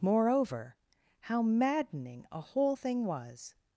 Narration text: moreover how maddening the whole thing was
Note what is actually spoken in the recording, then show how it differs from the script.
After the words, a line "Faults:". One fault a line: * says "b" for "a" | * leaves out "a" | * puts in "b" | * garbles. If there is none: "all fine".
moreover how maddening a whole thing was
Faults:
* says "a" for "the"